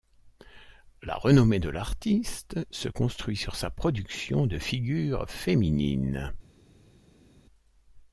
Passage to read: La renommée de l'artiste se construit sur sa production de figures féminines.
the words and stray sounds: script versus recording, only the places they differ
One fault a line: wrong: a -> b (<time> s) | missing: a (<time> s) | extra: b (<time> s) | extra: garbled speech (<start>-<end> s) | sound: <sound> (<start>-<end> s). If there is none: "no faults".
no faults